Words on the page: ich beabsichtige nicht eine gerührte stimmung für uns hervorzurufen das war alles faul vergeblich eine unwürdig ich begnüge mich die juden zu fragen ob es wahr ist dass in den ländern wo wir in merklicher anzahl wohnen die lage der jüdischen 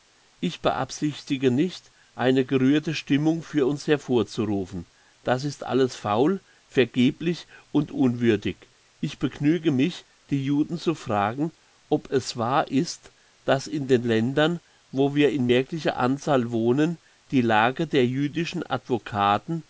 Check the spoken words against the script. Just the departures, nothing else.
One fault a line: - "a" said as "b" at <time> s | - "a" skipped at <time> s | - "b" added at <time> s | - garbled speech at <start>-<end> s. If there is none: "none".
- "war" said as "ist" at 5.4 s
- "eine" said as "und" at 7.7 s